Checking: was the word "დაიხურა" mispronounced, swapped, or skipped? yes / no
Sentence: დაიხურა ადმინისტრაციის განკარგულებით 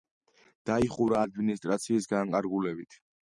no